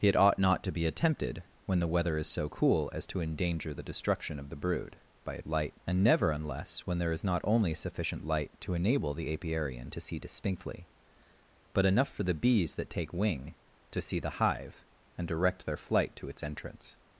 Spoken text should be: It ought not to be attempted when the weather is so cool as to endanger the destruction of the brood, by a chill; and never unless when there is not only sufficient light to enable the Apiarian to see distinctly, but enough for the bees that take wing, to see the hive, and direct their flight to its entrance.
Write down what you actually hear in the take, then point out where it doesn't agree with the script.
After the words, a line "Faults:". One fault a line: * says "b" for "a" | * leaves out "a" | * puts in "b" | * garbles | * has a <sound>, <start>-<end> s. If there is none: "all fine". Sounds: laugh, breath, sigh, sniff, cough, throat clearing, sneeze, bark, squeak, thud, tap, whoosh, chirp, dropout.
It ought not to be attempted when the weather is so cool as to endanger the destruction of the brood, by a light; and never unless when there is not only sufficient light to enable the Apiarian to see distinctly, but enough for the bees that take wing, to see the hive, and direct their flight to its entrance.
Faults:
* says "light" for "chill"